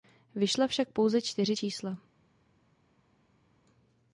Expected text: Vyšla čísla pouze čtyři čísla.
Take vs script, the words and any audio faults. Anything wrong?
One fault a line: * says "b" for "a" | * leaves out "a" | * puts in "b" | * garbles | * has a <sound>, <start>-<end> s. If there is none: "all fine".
* says "však" for "čísla"